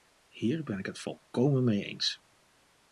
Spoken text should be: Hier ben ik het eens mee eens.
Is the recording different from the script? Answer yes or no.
yes